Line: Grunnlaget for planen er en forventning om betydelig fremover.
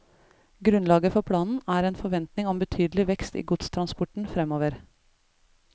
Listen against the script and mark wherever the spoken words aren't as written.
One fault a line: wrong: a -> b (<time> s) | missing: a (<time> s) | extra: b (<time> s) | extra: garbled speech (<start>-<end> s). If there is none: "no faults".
extra: vekst i godstransporten (3.1 s)